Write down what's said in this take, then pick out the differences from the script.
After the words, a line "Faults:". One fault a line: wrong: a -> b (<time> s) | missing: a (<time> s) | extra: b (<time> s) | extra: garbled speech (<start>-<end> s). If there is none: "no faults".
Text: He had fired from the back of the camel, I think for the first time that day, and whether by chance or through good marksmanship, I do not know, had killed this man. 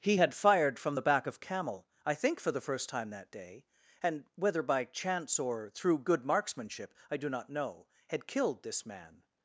He had fired from the back of camel, I think for the first time that day, and whether by chance or through good marksmanship, I do not know, had killed this man.
Faults:
missing: the (1.4 s)